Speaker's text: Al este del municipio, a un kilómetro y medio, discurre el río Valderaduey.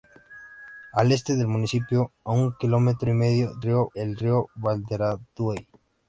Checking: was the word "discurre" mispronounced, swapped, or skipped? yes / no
yes